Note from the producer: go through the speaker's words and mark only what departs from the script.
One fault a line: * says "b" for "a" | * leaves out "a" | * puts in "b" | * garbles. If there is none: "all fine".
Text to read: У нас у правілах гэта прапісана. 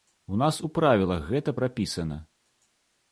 all fine